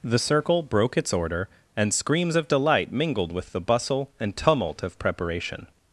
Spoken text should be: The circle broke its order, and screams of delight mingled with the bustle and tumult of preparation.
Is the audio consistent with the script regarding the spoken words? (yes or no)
yes